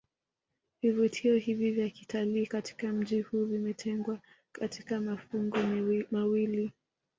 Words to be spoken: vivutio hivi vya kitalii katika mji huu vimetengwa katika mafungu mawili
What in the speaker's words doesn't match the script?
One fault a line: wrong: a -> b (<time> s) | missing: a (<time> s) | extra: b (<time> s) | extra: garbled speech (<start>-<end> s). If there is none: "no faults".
no faults